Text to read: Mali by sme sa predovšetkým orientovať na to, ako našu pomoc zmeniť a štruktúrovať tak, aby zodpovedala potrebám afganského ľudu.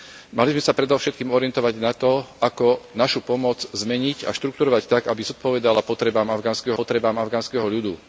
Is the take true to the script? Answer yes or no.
no